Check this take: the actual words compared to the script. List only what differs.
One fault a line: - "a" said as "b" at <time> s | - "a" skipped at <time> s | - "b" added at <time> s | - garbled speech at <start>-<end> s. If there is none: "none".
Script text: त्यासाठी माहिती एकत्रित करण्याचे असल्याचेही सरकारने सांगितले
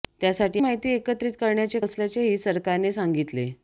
none